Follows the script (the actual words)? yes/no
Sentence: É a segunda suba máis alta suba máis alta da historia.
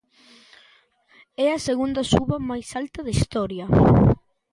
no